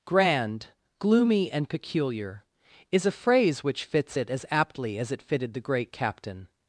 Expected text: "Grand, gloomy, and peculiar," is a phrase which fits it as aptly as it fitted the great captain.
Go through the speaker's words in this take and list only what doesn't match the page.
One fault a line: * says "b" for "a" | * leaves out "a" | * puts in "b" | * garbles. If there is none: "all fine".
all fine